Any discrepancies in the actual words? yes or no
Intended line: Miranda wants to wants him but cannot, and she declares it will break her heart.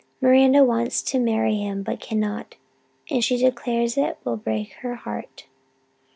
yes